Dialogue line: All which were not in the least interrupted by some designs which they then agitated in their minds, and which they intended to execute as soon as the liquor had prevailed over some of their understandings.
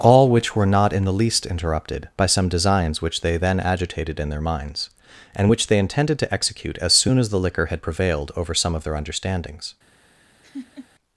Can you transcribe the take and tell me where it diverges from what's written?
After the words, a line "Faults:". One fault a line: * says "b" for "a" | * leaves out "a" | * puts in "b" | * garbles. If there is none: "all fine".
All which were not in the least interrupted by some designs which they then agitated in their minds, and which they intended to execute as soon as the liquor had prevailed over some of their understandings.
Faults:
all fine